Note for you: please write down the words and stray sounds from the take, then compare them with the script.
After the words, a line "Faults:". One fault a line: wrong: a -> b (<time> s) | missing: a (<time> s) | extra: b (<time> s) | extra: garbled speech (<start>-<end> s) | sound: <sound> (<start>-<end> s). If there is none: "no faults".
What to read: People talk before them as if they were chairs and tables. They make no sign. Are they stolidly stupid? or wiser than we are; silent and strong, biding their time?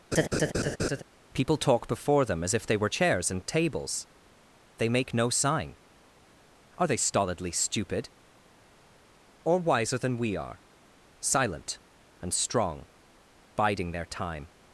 People talk before them as if they were chairs and tables. They make no sign. Are they stolidly stupid? or wiser than we are; silent and strong, biding their time?
Faults:
sound: laugh (0.1-1.0 s)